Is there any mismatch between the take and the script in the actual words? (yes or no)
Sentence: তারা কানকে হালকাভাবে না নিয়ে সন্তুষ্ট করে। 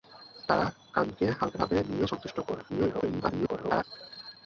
yes